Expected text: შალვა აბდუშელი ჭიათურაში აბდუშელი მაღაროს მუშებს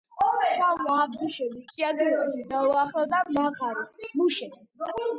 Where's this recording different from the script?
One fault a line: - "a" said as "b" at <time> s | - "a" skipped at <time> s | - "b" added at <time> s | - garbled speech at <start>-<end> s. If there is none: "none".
- "აბდუშელი" said as "დაუახლოვდა" at 2.5 s